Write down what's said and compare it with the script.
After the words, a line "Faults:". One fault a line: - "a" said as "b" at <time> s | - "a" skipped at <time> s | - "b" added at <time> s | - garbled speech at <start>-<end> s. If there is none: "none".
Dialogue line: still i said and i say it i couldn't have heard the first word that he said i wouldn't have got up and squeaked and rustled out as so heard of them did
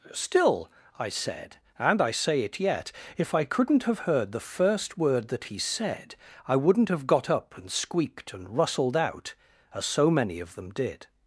still i said and i say it yet if i couldn't have heard the first word that he said i wouldn't have got up and squeaked and rustled out as so many of them did
Faults:
- "yet if" added at 2.6 s
- "heard" said as "many" at 10.1 s